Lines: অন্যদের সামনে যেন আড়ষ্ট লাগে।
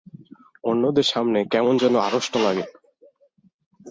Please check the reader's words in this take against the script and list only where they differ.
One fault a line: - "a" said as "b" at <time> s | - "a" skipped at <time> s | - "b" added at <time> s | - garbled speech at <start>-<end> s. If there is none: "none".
- "কেমন" added at 1.5 s